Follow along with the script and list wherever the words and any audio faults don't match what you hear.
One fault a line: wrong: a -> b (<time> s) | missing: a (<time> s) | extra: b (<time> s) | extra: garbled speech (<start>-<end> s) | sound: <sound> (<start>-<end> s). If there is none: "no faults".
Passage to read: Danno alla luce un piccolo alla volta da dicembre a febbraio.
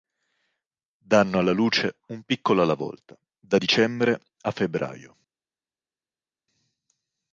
no faults